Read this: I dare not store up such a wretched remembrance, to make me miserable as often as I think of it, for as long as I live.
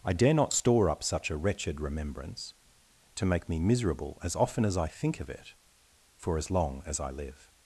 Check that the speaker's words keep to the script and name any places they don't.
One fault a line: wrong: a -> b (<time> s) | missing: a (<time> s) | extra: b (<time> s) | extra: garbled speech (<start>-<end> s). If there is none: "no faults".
no faults